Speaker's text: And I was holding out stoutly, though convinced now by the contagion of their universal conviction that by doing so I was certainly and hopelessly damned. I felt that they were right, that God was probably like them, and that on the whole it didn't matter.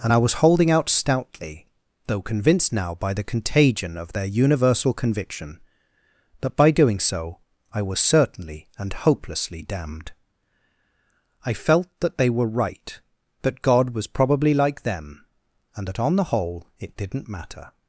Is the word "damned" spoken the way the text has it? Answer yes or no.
yes